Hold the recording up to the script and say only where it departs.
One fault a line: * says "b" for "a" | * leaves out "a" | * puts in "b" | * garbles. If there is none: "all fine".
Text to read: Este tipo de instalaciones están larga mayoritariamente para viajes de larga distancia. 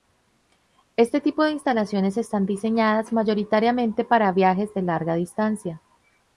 * says "diseñadas" for "larga"